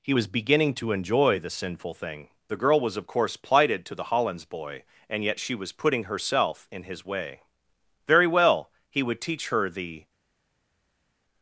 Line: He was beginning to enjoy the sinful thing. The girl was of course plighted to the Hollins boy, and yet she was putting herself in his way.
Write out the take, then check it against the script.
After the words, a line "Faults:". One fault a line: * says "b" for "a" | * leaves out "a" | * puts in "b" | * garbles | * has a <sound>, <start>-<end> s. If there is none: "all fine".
He was beginning to enjoy the sinful thing. The girl was of course plighted to the Hollins boy, and yet she was putting herself in his way. Very well! He would teach her the
Faults:
* puts in "Very well He would teach her the"